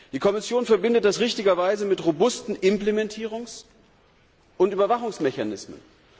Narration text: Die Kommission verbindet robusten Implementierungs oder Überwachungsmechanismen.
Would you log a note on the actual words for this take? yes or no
yes